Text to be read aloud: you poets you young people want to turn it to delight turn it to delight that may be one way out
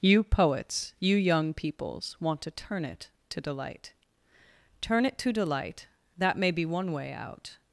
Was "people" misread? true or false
true